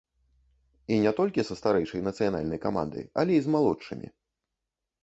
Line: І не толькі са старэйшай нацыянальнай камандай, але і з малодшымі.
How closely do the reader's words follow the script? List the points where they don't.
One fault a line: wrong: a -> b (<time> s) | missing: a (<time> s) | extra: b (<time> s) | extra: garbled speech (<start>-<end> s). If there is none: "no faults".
no faults